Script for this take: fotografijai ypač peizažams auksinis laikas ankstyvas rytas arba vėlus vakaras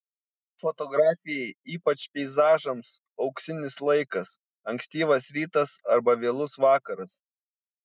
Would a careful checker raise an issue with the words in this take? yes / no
no